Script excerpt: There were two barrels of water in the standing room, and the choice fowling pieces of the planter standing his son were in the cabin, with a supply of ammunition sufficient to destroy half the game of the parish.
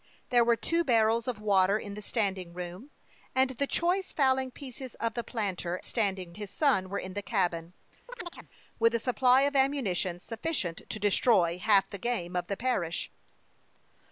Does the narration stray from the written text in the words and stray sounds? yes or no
yes